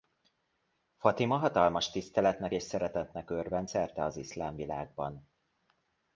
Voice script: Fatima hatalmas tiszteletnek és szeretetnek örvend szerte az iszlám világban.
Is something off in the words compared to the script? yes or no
no